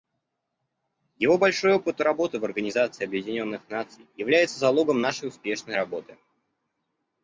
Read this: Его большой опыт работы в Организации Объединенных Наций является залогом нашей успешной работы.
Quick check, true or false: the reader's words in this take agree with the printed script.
true